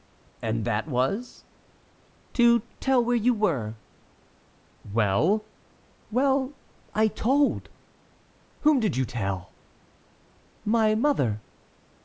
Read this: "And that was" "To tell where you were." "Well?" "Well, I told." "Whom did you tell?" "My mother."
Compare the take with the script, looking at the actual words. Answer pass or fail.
pass